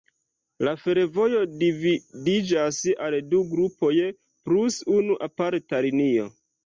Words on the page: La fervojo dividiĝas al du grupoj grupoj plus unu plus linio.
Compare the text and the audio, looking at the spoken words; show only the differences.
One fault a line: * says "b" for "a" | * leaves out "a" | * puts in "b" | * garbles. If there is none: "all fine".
* leaves out "grupoj"
* says "aparta" for "plus"